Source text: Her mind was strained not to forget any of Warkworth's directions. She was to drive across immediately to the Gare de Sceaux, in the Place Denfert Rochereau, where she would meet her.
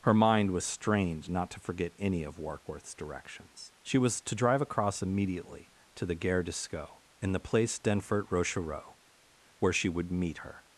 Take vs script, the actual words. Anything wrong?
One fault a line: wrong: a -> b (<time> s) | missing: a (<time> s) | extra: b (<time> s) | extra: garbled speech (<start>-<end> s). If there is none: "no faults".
no faults